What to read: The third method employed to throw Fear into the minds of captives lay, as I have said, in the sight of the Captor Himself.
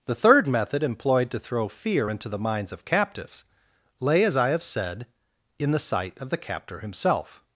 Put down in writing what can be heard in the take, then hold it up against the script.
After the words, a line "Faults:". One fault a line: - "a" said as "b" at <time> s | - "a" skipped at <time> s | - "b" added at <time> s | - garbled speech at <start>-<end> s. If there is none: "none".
The third method employed to throw Fear into the minds of captives lay, as I have said, in the sight of the Captor Himself.
Faults:
none